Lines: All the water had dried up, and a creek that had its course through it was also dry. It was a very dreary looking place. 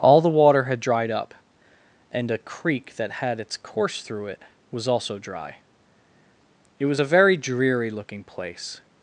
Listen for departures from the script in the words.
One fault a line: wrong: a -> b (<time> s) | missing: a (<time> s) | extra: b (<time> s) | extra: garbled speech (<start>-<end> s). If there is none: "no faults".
no faults